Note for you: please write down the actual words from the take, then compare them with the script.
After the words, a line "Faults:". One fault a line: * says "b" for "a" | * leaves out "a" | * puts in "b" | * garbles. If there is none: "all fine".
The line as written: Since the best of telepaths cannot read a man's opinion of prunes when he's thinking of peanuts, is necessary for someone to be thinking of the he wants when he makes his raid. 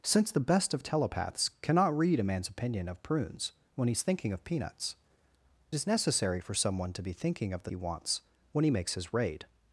Since the best of telepaths cannot read a man's opinion of prunes when he's thinking of peanuts, is necessary for someone to be thinking of the he wants when he makes his raid.
Faults:
all fine